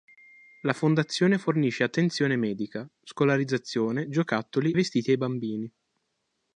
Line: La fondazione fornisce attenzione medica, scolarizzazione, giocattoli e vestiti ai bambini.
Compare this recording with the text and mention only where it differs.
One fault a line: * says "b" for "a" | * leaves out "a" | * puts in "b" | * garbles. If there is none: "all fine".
* leaves out "e"